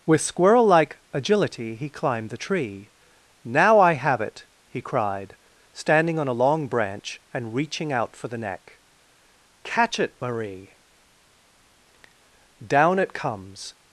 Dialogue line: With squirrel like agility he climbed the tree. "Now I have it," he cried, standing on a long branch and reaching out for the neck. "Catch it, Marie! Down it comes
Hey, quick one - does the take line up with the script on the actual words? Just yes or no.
yes